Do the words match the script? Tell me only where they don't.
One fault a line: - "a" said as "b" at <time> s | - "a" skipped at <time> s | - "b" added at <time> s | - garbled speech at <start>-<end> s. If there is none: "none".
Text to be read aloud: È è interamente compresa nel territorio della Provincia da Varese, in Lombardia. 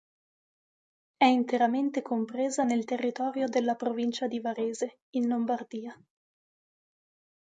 - "è" skipped at 1.2 s
- "da" said as "di" at 4.3 s